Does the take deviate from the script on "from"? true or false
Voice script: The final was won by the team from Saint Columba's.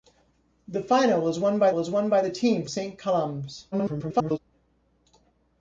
true